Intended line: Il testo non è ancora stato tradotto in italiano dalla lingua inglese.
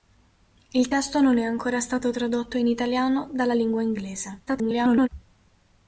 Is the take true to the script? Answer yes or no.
no